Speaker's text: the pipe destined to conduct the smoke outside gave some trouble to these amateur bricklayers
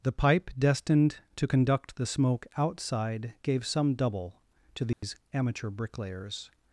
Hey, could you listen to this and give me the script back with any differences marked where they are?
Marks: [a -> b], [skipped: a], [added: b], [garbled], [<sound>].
the pipe destined to conduct the smoke outside gave some [trouble -> double] to these [dropout] amateur bricklayers